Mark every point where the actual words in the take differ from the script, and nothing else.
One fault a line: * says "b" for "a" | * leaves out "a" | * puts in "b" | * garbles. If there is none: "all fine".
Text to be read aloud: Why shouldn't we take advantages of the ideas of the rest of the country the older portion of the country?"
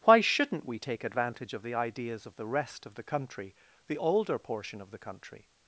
* says "advantage" for "advantages"